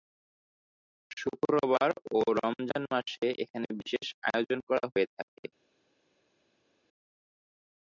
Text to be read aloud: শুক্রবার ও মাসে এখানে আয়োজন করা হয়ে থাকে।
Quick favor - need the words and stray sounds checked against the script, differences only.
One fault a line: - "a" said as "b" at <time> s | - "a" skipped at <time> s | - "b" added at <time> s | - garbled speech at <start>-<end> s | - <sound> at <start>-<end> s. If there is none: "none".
- "রমজান" added at 2.4 s
- "বিশেষ" added at 3.8 s